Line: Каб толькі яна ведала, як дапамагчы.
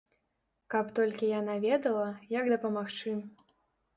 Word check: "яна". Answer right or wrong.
right